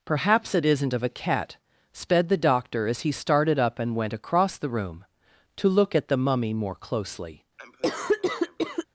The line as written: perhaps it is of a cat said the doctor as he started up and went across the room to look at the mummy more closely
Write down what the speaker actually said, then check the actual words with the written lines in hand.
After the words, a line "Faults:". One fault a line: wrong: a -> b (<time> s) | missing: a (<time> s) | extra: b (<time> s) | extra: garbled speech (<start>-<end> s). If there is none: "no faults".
perhaps it isn't of a cat sped the doctor as he started up and went across the room to look at the mummy more closely
Faults:
wrong: is -> isn't (0.7 s)
wrong: said -> sped (1.9 s)